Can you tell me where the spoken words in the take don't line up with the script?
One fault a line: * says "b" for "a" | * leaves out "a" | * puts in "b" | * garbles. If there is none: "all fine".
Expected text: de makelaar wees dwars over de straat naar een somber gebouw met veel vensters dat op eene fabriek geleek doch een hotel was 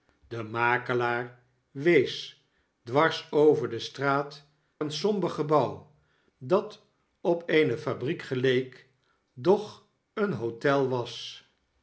* leaves out "naar"
* leaves out "met veel vensters"